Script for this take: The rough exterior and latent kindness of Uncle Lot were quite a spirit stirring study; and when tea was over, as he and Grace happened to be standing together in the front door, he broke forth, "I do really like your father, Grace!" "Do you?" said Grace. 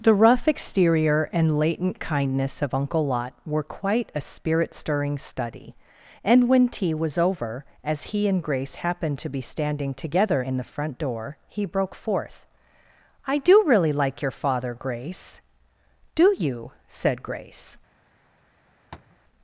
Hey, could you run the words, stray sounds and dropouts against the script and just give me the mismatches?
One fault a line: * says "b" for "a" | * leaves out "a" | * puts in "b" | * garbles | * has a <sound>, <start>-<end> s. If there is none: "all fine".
* has a tap, 18.9-19.2 s